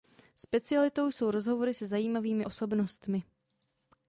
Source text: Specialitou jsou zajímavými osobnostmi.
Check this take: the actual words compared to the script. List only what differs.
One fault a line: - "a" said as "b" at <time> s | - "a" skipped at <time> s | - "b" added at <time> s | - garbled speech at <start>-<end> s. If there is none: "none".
- "rozhovory se" added at 1.3 s